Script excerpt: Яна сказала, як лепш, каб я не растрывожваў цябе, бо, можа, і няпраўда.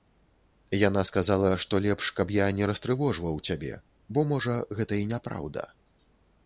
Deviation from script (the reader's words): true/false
true